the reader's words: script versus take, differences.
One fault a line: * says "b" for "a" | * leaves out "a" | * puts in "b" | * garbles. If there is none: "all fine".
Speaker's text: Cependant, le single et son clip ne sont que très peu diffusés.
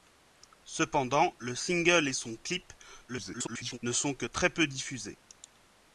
* garbles